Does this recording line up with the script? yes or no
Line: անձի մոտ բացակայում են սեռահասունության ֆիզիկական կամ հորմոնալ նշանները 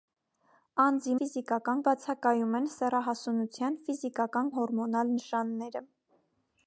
no